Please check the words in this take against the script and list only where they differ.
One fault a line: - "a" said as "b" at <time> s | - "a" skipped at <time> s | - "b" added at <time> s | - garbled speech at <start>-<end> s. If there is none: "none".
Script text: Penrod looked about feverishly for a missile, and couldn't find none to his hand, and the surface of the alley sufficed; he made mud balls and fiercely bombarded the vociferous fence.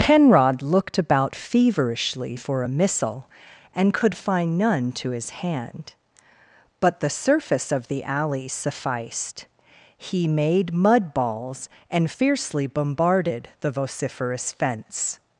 - "couldn't" said as "could" at 4.0 s
- "and" said as "but" at 6.8 s